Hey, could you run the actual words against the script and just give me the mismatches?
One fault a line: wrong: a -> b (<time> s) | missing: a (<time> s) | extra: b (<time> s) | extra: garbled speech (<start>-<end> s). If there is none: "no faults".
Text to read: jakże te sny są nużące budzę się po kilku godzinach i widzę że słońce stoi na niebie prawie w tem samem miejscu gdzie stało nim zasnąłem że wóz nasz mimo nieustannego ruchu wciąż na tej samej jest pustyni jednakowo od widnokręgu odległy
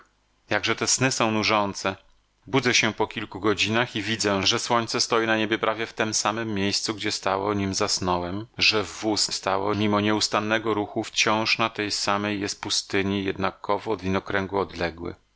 wrong: nasz -> stało (9.3 s)